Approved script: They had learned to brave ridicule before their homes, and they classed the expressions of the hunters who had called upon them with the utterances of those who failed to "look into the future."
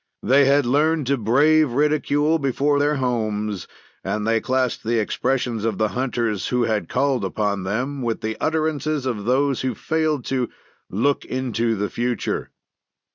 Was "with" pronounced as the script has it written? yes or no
yes